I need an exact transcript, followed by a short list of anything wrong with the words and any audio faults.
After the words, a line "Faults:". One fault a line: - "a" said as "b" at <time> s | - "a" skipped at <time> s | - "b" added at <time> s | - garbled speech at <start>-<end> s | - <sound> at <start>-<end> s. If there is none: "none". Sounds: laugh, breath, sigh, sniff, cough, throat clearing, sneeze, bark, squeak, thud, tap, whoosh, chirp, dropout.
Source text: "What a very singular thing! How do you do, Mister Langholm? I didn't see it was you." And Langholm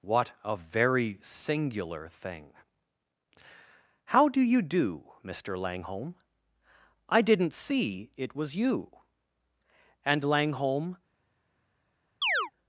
"What a very singular thing! How do you do, Mister Langholm? I didn't see it was you." And Langholm
Faults:
- chirp at 12.2-12.5 s